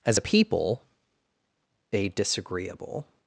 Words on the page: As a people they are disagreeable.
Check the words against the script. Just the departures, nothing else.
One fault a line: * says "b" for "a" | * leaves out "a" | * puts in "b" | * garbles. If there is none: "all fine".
* leaves out "are"